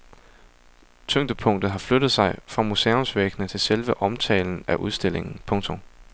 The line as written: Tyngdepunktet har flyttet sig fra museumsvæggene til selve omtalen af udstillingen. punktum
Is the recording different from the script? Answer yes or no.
no